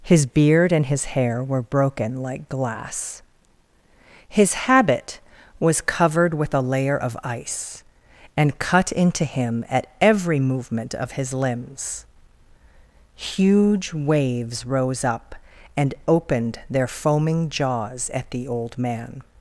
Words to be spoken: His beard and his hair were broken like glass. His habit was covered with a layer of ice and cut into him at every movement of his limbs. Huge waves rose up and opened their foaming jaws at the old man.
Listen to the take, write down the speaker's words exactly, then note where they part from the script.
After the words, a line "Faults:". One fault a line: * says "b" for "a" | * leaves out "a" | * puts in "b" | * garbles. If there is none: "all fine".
His beard and his hair were broken like glass. His habit was covered with a layer of ice and cut into him at every movement of his limbs. Huge waves rose up and opened their foaming jaws at the old man.
Faults:
all fine